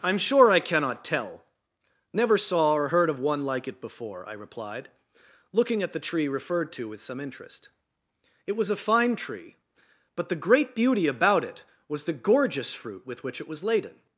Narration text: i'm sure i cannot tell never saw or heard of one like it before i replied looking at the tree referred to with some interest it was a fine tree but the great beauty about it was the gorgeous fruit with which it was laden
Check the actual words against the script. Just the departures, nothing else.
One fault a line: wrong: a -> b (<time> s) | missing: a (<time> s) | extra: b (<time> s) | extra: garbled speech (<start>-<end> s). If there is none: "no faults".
no faults